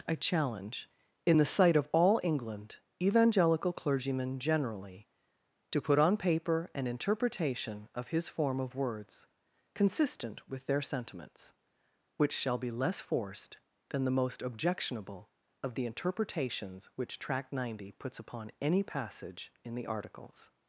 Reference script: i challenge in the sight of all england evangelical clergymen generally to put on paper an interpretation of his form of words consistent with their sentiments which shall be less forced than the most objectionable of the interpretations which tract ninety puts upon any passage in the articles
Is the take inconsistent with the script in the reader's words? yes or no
no